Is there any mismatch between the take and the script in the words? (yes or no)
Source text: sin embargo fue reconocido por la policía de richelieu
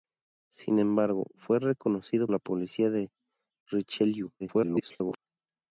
yes